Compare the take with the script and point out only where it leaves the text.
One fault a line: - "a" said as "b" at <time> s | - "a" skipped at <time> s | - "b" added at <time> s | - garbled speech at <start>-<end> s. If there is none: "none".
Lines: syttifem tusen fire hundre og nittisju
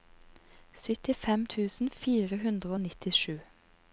none